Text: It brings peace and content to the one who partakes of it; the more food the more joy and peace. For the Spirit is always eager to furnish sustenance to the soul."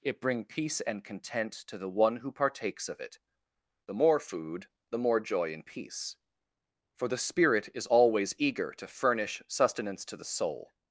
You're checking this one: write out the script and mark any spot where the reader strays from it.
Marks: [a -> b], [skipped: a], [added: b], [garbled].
It [brings -> bring] peace and content to the one who partakes of it; the more food the more joy and peace. For the Spirit is always eager to furnish sustenance to the soul."